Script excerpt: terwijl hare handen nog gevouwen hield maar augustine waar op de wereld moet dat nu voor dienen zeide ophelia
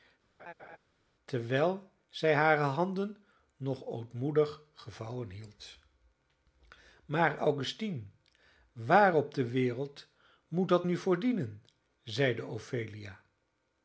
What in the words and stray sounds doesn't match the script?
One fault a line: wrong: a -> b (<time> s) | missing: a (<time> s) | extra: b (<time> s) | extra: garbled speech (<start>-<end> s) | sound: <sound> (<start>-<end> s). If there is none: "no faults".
sound: laugh (0.4-0.8 s)
extra: zij (2.1 s)
extra: ootmoedig (3.9 s)